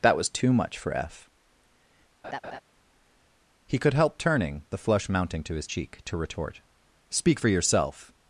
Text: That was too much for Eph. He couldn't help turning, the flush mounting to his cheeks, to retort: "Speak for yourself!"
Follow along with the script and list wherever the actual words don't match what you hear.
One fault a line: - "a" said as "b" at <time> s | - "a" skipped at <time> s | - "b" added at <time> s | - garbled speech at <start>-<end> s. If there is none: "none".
- "couldn't" said as "could" at 3.8 s
- "cheeks" said as "cheek" at 5.6 s